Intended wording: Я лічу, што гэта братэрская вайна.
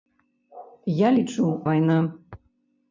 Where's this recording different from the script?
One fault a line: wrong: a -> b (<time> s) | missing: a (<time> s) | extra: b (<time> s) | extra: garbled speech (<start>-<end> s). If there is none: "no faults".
missing: што гэта братэрская (1.5 s)